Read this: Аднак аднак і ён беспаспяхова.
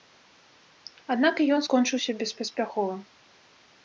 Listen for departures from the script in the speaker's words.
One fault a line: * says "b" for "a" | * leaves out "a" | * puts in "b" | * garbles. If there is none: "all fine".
* leaves out "аднак"
* puts in "скончыўся"